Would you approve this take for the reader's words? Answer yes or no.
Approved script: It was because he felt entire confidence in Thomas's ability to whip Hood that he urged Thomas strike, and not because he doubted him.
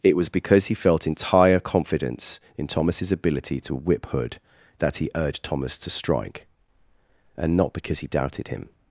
no